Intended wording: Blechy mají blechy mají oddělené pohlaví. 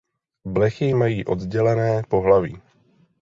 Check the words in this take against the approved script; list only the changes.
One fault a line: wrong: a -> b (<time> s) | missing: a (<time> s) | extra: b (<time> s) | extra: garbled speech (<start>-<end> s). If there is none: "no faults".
missing: blechy mají (1.3 s)